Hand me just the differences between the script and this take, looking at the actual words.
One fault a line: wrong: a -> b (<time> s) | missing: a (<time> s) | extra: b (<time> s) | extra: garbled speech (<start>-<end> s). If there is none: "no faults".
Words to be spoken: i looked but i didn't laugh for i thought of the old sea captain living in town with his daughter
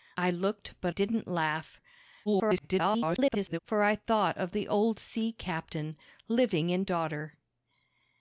missing: i (0.9 s)
extra: garbled speech (2.3-3.6 s)
missing: town with his (6.9 s)